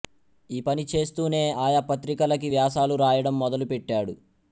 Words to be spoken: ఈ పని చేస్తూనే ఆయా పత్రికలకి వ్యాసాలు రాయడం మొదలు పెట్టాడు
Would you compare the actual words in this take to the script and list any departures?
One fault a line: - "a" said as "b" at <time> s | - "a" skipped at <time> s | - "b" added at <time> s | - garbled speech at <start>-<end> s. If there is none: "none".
none